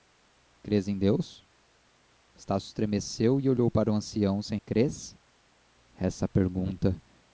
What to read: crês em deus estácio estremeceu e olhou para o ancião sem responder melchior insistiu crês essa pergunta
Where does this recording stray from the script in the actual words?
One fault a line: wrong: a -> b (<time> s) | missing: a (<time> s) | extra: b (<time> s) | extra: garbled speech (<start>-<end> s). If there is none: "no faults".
missing: responder melchior insistiu (4.6 s)